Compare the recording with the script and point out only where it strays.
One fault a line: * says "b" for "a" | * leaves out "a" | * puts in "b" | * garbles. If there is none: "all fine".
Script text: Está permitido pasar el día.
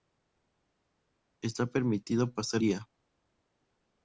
* leaves out "el"